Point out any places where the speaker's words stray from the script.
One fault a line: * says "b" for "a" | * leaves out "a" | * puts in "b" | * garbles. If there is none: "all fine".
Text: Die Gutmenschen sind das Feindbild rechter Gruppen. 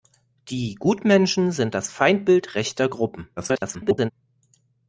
* garbles